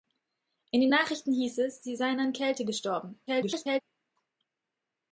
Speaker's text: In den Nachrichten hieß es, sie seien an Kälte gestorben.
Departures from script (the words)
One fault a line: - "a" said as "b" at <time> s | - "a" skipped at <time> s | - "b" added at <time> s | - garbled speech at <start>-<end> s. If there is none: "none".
- garbled speech at 3.3-3.8 s